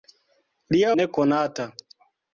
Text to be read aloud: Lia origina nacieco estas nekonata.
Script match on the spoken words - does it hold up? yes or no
no